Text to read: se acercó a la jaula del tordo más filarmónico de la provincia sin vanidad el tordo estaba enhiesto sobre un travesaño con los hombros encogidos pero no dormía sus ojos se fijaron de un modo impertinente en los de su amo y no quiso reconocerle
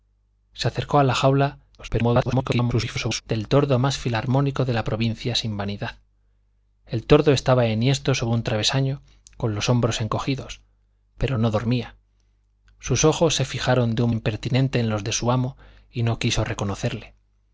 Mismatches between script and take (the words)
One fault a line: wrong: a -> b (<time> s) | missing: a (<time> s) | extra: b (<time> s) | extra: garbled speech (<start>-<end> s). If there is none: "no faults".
extra: garbled speech (1.8-3.2 s)
missing: modo (14.1 s)